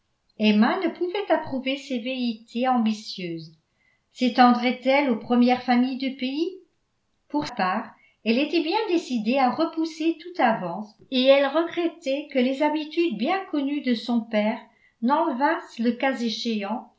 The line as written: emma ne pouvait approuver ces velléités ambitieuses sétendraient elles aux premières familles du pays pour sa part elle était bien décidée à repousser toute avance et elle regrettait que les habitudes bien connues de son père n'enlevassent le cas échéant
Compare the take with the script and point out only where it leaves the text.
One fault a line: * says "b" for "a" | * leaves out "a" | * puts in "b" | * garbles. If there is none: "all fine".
* leaves out "sa"